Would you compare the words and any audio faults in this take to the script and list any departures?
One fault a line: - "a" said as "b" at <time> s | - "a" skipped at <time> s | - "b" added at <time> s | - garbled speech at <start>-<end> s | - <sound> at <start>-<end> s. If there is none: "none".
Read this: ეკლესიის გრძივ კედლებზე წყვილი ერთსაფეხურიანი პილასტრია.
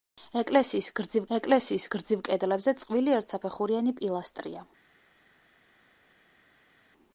- "ეკლესიის გრძივ" added at 1.4 s